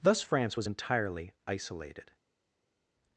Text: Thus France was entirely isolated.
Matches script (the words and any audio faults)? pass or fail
pass